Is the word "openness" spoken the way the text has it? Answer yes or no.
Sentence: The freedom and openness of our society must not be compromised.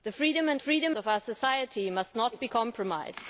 no